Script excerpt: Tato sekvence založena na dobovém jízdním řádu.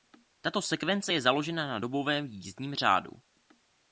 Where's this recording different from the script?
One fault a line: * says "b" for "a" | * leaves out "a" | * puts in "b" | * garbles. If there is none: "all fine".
* puts in "je"